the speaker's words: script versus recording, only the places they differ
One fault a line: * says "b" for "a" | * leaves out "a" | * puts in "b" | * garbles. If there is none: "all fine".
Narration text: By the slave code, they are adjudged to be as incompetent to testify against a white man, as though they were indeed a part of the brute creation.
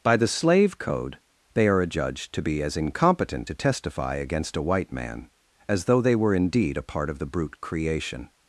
all fine